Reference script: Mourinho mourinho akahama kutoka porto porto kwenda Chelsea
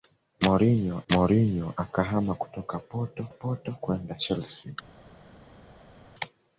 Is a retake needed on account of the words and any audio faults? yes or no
no